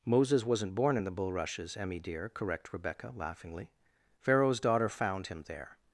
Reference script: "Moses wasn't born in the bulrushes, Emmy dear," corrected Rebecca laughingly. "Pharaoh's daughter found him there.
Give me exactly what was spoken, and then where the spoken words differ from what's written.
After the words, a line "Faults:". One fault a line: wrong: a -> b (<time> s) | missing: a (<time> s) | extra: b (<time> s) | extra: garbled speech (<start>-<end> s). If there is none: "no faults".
"Moses wasn't born in the bulrushes, Emmy dear," correct Rebecca laughingly. "Pharaoh's daughter found him there.
Faults:
wrong: corrected -> correct (2.3 s)